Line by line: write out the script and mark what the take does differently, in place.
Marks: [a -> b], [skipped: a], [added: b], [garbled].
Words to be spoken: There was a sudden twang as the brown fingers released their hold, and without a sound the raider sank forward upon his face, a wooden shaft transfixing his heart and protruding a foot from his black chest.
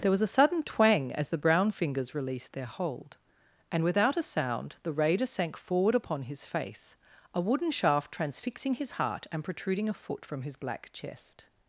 There was a sudden twang as the brown fingers released their hold, and without a sound the raider sank forward upon his face, a wooden shaft transfixing his heart and protruding a foot from his black chest.